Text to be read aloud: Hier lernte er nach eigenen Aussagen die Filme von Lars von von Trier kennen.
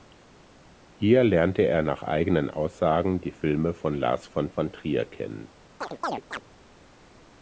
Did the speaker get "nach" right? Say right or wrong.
right